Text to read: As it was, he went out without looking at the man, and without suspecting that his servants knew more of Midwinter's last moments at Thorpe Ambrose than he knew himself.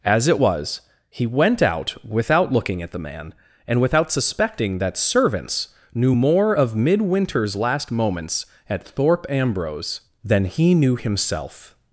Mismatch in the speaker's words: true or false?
true